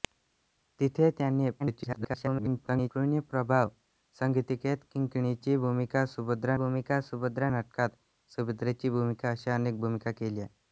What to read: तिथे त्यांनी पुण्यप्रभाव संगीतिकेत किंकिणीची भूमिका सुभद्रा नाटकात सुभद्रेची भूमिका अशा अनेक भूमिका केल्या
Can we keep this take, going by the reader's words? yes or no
no